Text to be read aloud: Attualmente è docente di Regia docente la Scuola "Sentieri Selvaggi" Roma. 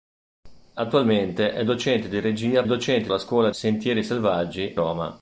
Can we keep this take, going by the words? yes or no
yes